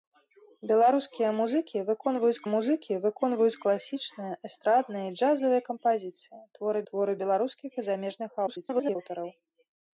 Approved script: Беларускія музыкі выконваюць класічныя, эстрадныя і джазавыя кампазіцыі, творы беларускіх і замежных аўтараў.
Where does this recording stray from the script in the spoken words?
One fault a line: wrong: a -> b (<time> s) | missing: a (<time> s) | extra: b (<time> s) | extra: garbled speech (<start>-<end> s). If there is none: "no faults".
extra: музыкі выконваюць (2.5 s)
extra: творы (6.9 s)
extra: garbled speech (8.5-9.0 s)